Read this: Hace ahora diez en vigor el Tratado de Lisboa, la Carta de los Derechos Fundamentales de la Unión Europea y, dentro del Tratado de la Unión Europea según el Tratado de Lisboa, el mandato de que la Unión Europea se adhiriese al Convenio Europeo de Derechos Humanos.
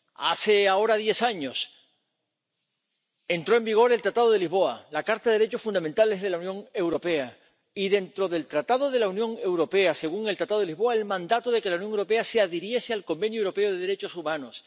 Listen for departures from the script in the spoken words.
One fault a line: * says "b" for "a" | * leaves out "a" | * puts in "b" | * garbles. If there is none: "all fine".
* puts in "años entró"